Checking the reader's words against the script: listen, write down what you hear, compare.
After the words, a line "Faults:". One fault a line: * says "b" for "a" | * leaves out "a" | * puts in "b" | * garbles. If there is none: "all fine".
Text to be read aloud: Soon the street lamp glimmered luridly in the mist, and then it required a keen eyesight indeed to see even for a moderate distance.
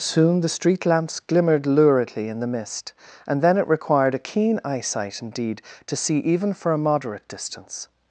Soon the street lamps glimmered luridly in the mist, and then it required a keen eyesight indeed to see even for a moderate distance.
Faults:
* says "lamps" for "lamp"